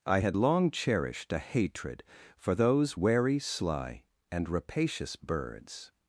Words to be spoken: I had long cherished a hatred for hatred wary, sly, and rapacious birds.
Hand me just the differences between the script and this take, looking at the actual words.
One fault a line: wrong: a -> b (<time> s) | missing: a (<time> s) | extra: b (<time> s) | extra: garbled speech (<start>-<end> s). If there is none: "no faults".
wrong: hatred -> those (2.5 s)